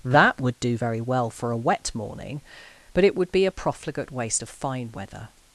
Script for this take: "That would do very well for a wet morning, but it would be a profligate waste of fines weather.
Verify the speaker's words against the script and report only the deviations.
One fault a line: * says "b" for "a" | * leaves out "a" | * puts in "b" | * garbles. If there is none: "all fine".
* says "fine" for "fines"